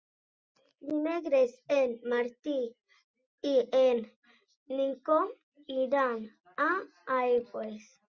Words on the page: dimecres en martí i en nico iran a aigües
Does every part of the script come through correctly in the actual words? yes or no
yes